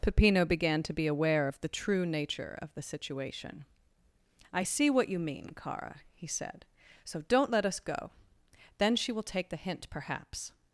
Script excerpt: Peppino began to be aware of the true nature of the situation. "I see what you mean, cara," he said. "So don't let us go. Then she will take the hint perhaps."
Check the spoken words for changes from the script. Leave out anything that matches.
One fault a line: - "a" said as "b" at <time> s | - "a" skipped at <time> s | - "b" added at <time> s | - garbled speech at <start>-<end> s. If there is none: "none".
none